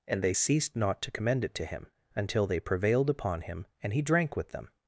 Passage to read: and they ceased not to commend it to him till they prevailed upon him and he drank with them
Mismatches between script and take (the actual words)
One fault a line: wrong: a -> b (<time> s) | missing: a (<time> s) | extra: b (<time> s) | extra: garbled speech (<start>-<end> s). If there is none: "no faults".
wrong: till -> until (2.1 s)